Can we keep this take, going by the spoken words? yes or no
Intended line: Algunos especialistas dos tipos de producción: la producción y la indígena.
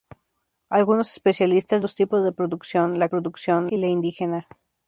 yes